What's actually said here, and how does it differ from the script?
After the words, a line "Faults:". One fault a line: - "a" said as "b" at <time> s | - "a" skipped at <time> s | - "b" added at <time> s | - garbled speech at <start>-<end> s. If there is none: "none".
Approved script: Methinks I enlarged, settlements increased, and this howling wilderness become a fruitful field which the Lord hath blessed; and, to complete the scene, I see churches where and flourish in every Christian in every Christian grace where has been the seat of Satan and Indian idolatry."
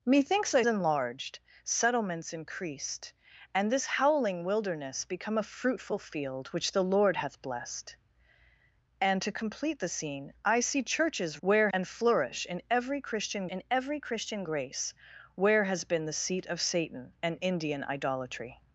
Methinks I enlarged, settlements increased, and this howling wilderness become a fruitful field which the Lord hath blessed; and, to complete the scene, I see churches where and flourish in every Christian in every Christian grace where has been the seat of Satan and Indian idolatry."
Faults:
none